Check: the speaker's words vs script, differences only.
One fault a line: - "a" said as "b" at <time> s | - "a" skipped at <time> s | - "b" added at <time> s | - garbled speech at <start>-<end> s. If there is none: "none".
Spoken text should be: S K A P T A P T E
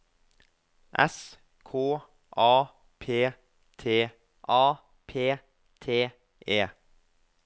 none